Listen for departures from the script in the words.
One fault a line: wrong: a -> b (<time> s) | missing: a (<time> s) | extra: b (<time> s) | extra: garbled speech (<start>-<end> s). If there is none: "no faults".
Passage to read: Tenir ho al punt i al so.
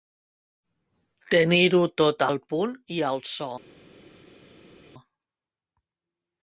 extra: tot (2.0 s)